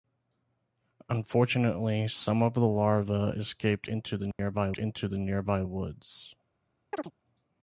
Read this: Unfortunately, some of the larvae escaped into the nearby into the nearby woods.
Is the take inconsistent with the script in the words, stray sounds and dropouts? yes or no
yes